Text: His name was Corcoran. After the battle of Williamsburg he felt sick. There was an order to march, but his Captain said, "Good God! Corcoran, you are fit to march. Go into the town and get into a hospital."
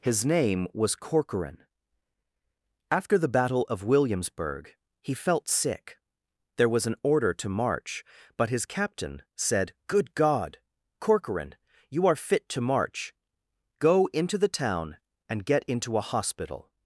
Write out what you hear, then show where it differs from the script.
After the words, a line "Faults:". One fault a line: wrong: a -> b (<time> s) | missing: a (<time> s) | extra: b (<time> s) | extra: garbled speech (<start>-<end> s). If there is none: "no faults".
His name was Corcoran. After the battle of Williamsburg he felt sick. There was an order to march, but his Captain said, "Good God! Corcoran, you are fit to march. Go into the town and get into a hospital."
Faults:
no faults